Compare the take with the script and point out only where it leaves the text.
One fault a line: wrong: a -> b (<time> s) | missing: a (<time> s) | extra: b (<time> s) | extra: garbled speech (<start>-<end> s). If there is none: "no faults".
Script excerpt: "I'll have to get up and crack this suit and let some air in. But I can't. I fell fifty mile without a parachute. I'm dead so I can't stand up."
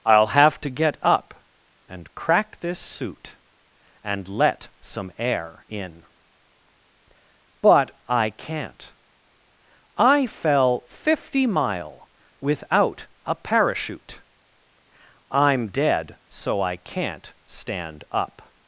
no faults